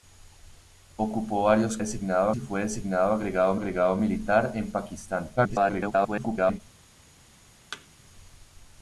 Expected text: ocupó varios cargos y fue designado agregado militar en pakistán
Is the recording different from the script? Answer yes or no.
yes